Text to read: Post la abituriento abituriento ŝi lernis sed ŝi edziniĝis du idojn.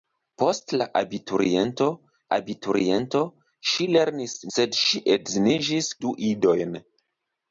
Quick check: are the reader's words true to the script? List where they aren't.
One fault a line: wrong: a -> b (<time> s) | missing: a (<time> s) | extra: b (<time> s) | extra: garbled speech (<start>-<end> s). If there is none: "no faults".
no faults